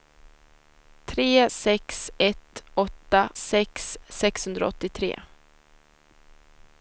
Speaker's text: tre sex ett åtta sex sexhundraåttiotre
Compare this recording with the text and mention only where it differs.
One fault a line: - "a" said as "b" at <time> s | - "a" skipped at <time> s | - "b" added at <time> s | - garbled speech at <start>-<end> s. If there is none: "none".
none